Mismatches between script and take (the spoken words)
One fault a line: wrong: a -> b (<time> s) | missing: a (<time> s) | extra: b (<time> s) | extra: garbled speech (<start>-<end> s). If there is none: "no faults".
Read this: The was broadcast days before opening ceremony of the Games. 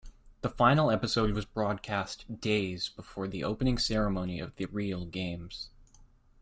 extra: final episode (0.5 s)
extra: the (3.3 s)
extra: real (4.6 s)